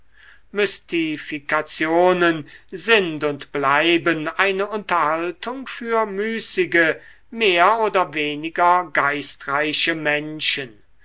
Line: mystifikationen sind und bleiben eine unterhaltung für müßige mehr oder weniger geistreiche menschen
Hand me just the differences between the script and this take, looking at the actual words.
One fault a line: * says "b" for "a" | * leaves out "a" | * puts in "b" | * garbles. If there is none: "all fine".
all fine